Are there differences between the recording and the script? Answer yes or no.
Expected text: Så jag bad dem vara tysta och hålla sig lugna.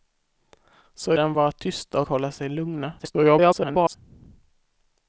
yes